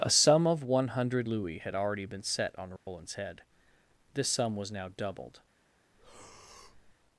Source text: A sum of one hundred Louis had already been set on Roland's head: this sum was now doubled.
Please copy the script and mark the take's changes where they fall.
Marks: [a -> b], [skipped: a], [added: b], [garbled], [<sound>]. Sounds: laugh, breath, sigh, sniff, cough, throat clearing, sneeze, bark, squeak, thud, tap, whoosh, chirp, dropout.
A sum of one hundred Louis had already been set on Roland's [dropout] head: this sum was now doubled. [breath]